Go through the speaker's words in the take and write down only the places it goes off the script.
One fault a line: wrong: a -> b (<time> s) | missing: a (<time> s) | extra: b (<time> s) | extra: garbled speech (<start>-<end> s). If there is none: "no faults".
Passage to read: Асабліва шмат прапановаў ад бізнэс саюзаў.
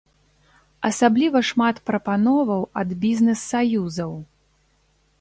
no faults